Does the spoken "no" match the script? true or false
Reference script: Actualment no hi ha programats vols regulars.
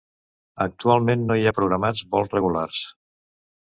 true